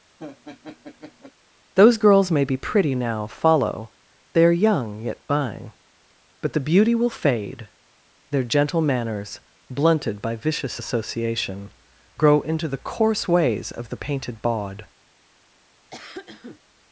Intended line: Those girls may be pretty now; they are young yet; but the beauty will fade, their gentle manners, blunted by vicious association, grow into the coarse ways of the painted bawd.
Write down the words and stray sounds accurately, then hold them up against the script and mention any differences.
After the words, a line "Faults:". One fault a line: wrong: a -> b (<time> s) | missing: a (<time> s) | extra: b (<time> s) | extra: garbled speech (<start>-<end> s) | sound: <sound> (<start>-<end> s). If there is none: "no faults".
Those girls may be pretty now; follow they are young yet; buying but the beauty will fade, their gentle manners, blunted by vicious association, grow into the coarse ways of the painted bawd.
Faults:
sound: laugh (0.2-1.3 s)
extra: follow (3.3 s)
extra: buying (5.3 s)
sound: cough (15.9-16.6 s)